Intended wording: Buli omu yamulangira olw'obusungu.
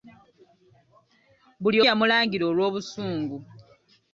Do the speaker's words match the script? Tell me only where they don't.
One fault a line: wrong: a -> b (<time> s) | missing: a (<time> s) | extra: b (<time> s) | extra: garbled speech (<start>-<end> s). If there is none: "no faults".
missing: omu (1.8 s)